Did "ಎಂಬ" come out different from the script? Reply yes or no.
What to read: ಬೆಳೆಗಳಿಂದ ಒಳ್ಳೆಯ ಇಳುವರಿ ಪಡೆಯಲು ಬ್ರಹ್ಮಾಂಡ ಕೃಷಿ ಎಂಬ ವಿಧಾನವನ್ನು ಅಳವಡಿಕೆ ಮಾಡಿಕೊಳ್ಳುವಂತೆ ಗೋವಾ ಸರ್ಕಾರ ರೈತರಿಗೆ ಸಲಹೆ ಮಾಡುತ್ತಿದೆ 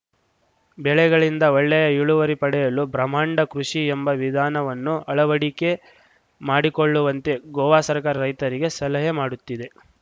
no